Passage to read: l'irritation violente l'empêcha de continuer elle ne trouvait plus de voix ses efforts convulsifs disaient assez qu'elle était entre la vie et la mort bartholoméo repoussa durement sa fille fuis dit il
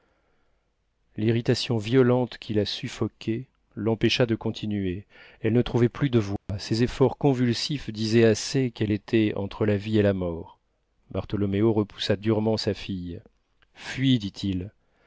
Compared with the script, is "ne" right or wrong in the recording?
right